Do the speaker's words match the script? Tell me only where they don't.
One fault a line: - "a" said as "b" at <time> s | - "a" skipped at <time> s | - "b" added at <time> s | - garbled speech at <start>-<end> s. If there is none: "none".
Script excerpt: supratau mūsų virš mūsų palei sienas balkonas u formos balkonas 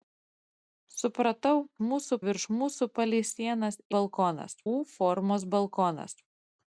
none